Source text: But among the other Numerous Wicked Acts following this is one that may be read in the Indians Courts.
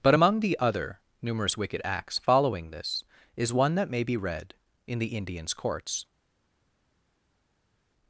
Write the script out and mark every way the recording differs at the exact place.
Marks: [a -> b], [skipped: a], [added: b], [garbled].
But among the other Numerous Wicked Acts following this is one that may be read in the Indians Courts.